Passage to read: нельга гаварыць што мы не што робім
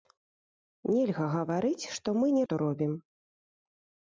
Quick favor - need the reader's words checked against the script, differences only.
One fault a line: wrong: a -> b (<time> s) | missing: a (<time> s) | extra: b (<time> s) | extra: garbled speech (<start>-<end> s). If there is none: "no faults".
no faults